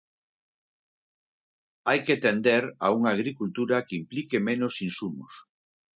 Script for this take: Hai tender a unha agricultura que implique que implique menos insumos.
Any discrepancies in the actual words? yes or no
yes